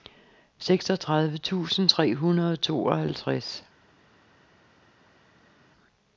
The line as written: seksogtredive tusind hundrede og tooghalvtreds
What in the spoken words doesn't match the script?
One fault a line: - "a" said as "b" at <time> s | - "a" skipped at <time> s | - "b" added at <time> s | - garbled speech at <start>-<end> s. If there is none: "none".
- "tre" added at 1.9 s